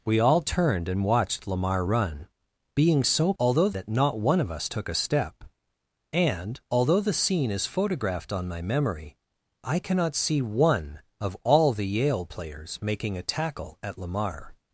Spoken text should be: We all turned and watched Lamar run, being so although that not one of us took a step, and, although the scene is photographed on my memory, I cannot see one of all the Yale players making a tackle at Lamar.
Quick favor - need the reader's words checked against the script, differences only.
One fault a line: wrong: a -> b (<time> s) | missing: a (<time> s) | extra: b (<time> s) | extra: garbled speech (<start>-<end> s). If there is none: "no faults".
no faults